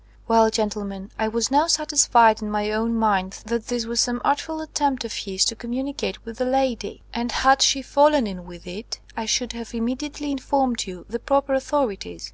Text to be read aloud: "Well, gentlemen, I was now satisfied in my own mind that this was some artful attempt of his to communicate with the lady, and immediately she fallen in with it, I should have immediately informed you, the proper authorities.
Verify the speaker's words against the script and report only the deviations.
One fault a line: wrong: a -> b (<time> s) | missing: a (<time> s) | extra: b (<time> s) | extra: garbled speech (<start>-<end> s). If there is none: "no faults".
wrong: immediately -> had (7.3 s)